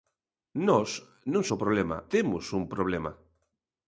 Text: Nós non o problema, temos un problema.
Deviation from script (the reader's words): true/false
false